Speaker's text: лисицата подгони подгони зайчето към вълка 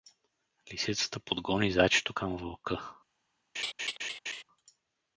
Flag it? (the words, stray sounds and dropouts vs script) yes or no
yes